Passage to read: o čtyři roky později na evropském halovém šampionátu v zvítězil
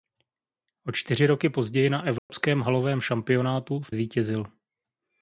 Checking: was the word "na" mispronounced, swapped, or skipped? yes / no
no